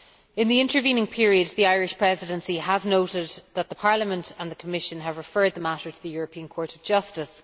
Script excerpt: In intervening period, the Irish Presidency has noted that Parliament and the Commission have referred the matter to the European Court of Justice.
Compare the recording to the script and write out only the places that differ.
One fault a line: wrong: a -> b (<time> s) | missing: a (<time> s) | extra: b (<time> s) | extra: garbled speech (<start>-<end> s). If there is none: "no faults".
extra: the (0.5 s)